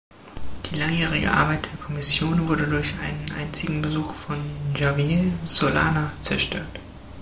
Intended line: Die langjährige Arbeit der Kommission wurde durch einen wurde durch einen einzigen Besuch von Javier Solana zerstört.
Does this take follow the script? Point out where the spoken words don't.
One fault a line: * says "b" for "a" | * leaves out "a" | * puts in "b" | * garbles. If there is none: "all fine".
* leaves out "wurde durch einen"